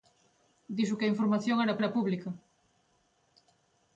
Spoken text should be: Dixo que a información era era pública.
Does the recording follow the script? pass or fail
pass